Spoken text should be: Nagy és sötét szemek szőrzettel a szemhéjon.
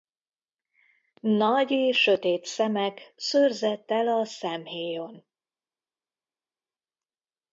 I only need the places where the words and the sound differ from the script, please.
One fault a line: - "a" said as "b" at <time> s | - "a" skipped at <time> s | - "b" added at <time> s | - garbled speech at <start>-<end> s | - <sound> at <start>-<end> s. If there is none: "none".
none